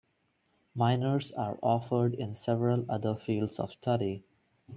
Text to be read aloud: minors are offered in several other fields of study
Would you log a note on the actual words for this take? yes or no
no